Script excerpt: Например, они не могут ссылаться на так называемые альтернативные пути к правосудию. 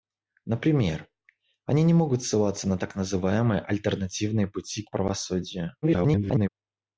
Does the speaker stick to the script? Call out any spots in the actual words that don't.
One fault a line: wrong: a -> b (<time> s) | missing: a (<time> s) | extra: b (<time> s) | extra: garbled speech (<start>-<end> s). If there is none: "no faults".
extra: garbled speech (5.8-6.5 s)